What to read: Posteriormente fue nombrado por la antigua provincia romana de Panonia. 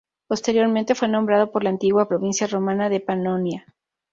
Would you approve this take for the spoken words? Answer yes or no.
yes